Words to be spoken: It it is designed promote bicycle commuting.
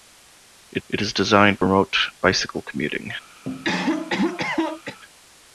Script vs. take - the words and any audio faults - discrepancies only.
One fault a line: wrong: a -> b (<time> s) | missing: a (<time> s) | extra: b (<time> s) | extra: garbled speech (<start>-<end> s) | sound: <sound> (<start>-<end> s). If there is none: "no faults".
sound: dropout (1.6-1.6 s)
sound: cough (3.4-5.0 s)